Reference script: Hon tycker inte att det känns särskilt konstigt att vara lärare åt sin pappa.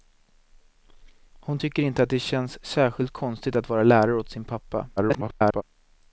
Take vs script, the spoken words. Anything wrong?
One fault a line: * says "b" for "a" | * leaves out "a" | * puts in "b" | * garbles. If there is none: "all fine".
* garbles